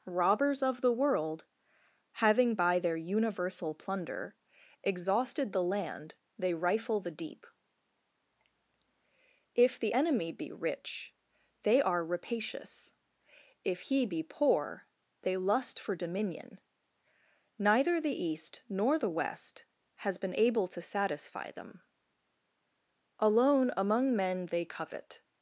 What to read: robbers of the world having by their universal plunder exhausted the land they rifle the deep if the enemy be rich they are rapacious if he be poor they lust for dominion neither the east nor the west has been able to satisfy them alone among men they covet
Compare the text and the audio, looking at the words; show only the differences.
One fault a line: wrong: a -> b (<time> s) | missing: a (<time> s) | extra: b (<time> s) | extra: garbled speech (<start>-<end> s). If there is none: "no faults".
no faults